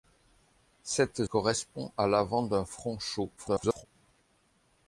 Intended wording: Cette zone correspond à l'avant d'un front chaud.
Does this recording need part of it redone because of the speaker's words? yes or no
yes